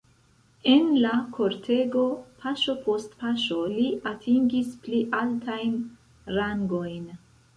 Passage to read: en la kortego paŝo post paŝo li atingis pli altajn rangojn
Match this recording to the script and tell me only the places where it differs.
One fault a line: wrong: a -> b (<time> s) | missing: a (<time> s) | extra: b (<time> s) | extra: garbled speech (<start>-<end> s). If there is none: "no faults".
no faults